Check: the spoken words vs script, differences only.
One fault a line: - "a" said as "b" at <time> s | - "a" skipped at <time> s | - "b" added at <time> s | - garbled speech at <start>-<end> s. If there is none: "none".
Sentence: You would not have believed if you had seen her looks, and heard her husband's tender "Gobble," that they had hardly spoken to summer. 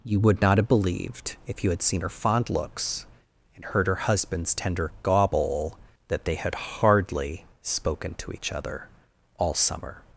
- "fond" added at 2.1 s
- "each other all" added at 8.3 s